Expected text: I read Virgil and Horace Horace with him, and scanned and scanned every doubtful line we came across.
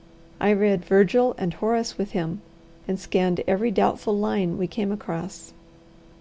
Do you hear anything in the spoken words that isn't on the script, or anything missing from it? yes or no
yes